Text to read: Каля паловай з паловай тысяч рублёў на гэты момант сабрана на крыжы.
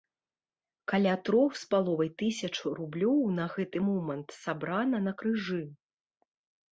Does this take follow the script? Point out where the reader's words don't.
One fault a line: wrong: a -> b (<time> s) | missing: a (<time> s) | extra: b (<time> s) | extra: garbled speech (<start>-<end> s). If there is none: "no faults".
wrong: паловай -> трох (1.3 s)